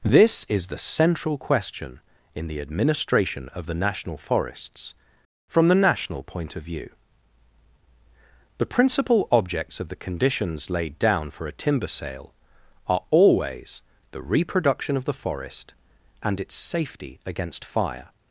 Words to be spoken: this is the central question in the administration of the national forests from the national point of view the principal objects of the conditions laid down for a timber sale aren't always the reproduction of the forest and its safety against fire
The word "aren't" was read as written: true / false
false